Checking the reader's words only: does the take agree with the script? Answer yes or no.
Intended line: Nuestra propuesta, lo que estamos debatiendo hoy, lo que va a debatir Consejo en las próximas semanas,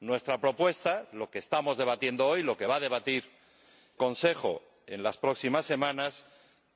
yes